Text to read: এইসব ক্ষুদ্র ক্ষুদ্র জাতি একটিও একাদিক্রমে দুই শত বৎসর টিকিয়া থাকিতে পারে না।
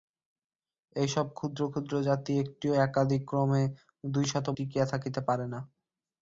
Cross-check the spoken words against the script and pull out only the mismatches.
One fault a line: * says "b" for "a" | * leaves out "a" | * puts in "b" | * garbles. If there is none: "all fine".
* leaves out "বৎসর"